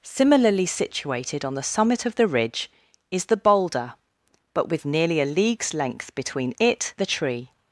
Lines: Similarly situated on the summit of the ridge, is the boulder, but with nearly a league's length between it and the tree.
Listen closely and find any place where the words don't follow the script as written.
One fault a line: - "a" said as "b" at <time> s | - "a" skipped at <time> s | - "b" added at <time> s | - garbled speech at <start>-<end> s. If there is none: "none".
- "and" skipped at 7.0 s